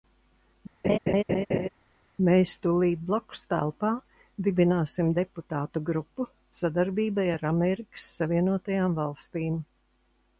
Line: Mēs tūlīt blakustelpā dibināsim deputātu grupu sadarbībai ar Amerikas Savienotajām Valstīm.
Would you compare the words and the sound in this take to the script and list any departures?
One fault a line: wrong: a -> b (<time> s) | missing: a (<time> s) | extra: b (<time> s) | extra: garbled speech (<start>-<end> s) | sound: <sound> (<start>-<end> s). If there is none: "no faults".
sound: laugh (0.8-1.7 s)